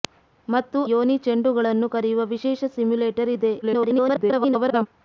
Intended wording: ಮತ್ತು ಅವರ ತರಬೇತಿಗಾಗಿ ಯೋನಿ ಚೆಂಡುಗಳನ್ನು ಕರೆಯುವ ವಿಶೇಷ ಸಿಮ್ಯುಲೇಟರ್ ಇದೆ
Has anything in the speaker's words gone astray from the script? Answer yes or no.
yes